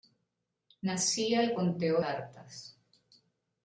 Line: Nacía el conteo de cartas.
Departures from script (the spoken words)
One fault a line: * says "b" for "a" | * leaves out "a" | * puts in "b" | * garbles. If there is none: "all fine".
* leaves out "de"